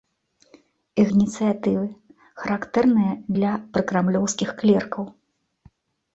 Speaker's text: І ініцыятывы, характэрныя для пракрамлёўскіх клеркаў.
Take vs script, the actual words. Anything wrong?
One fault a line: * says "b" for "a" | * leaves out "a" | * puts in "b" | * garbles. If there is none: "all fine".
all fine